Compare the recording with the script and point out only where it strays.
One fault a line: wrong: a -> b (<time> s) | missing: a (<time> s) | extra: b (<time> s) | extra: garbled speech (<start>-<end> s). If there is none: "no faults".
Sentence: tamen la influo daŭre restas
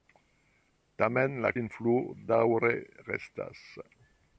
no faults